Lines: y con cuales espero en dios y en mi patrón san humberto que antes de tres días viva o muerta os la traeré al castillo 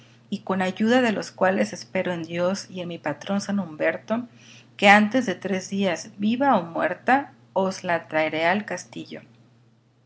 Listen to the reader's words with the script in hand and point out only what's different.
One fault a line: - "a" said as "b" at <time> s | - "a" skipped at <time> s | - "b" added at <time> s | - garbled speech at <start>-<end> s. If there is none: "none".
- "ayuda de los" added at 0.6 s